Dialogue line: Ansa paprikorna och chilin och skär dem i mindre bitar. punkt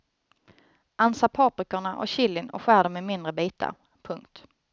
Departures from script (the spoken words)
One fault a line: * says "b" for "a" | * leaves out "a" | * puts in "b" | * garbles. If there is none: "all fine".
all fine